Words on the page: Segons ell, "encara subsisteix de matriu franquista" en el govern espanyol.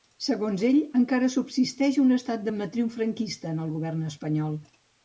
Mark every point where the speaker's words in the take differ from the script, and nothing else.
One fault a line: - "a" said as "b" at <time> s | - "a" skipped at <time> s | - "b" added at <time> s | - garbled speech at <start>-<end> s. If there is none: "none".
- "un estat" added at 2.1 s